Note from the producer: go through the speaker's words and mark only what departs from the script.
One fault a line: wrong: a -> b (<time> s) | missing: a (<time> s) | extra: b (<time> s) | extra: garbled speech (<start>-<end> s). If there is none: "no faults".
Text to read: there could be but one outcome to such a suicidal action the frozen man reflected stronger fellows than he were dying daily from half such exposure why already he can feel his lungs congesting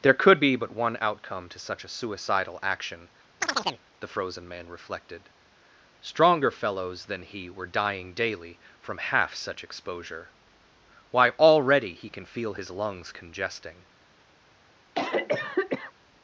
no faults